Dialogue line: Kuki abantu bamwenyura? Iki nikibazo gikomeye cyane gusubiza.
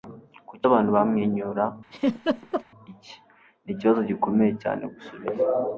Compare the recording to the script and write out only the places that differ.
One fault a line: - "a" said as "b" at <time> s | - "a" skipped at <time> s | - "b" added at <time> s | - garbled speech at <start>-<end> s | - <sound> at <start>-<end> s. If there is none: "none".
- laugh at 1.9-2.6 s